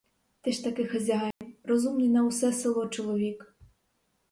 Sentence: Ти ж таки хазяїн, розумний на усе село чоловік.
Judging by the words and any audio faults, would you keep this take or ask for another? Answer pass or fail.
fail